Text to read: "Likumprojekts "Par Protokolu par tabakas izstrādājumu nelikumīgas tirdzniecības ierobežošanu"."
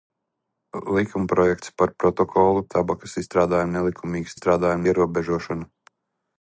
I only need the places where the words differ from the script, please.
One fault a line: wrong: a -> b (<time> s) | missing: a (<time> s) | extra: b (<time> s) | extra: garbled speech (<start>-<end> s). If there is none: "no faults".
missing: par (2.6 s)
wrong: tirdzniecības -> izstrādājumu (4.4 s)